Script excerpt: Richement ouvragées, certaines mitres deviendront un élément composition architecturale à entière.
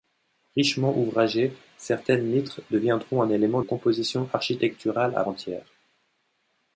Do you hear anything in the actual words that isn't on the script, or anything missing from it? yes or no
no